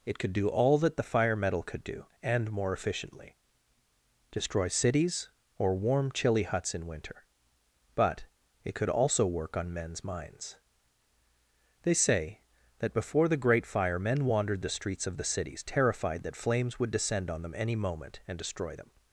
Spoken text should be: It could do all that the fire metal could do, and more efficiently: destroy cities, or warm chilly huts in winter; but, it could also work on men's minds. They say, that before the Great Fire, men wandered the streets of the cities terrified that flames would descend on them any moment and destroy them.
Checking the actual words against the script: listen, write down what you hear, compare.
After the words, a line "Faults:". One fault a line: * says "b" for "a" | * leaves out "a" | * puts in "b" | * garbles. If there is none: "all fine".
It could do all that the fire metal could do, and more efficiently: destroy cities, or warm chilly huts in winter; but, it could also work on men's minds. They say, that before the Great Fire, men wandered the streets of the cities terrified that flames would descend on them any moment and destroy them.
Faults:
all fine